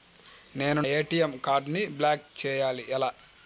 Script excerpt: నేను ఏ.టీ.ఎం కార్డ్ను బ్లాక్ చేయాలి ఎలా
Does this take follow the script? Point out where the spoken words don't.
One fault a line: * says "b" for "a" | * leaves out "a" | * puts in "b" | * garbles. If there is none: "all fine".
all fine